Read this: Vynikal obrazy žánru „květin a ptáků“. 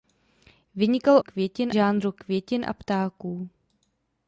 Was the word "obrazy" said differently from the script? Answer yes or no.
yes